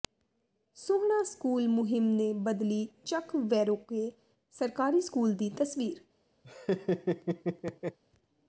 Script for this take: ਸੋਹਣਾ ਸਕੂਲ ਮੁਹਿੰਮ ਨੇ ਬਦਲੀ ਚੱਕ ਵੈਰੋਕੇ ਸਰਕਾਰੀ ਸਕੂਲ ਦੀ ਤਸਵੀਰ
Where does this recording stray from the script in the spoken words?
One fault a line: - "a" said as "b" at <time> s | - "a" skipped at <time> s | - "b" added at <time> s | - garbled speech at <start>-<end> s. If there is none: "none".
none